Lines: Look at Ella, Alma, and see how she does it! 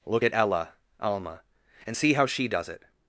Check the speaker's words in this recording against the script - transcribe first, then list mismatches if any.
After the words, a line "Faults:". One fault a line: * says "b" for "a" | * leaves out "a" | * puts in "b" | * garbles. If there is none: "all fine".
Look at Ella, Alma, and see how she does it!
Faults:
all fine